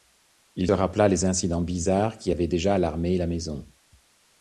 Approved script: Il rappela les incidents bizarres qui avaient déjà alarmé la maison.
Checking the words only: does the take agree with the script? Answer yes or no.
yes